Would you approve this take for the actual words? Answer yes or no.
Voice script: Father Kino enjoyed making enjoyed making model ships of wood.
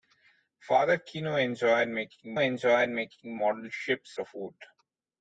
yes